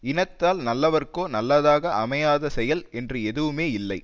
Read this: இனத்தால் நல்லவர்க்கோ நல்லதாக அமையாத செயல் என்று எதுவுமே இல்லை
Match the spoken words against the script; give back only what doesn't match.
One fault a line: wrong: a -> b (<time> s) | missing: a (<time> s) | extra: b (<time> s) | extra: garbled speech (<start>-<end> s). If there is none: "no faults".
no faults